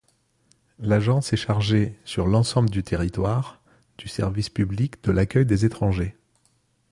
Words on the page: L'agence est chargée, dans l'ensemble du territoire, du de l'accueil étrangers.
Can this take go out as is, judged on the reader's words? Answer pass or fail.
fail